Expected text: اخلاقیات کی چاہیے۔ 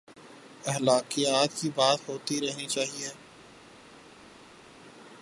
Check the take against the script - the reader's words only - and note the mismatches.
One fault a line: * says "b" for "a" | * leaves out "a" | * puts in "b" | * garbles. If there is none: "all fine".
* puts in "بات ہوتی رہنی"